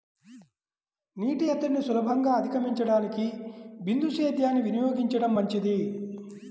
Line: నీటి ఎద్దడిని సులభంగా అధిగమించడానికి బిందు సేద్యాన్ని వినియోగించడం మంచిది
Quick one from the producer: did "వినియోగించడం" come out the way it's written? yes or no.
yes